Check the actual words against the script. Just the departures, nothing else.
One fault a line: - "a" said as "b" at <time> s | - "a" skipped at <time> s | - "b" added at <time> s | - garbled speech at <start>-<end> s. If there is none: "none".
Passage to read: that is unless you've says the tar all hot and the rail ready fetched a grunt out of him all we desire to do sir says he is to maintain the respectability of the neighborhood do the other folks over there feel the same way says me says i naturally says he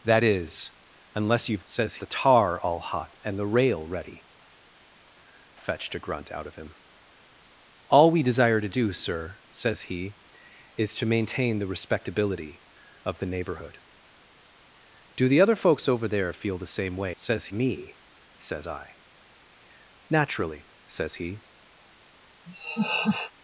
none